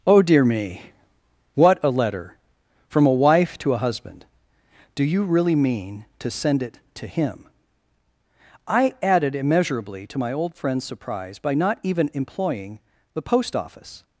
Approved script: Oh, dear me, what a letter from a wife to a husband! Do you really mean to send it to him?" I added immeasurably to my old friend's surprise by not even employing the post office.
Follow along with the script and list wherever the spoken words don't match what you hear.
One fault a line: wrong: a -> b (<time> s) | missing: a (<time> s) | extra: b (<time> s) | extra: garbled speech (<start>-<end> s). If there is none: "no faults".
no faults